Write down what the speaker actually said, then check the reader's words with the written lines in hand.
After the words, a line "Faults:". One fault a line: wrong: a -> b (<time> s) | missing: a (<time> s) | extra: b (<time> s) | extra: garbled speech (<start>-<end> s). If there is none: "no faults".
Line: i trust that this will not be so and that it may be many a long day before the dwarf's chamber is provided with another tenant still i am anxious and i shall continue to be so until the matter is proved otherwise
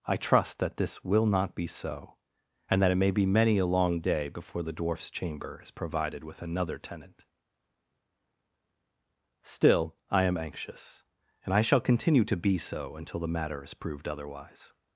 i trust that this will not be so and that it may be many a long day before the dwarf's chamber is provided with another tenant still i am anxious and i shall continue to be so until the matter is proved otherwise
Faults:
no faults